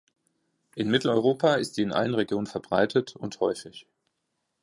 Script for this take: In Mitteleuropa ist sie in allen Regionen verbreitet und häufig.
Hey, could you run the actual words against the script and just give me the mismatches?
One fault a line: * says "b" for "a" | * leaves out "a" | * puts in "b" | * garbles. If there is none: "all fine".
all fine